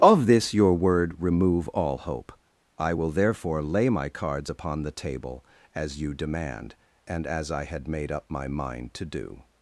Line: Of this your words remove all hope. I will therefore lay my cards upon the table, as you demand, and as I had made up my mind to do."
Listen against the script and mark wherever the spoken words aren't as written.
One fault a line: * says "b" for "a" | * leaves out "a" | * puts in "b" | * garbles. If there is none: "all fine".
* says "word" for "words"